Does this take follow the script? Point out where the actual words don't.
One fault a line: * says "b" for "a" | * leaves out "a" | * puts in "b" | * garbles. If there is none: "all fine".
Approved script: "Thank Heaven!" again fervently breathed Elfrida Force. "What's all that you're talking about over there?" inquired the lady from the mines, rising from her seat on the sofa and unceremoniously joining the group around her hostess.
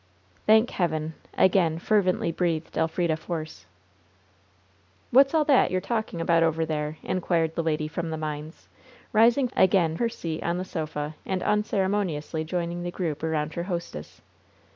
* says "again" for "from"